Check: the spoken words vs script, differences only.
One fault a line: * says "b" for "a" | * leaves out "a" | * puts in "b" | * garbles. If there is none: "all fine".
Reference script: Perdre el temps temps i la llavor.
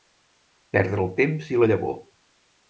* leaves out "temps"